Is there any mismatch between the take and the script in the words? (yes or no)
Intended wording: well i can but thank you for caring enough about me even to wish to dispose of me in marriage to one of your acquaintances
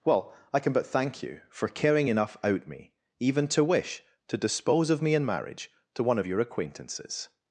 yes